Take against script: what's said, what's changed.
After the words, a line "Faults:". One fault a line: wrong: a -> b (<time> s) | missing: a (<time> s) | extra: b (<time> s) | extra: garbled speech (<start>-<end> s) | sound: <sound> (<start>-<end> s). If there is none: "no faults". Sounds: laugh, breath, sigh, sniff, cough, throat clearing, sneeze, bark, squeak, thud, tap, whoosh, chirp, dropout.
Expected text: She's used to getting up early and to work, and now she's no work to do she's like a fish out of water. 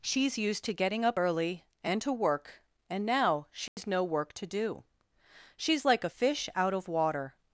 She's used to getting up early and to work, and now she's no work to do she's like a fish out of water.
Faults:
sound: dropout (3.7-3.8 s)